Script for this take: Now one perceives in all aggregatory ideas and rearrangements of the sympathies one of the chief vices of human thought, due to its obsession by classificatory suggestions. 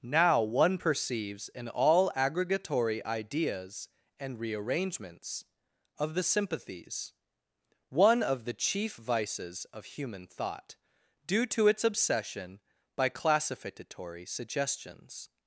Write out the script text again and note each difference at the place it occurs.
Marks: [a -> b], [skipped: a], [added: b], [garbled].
Now one perceives in all aggregatory ideas and rearrangements of the sympathies one of the chief vices of human thought, due to its obsession by classificatory suggestions.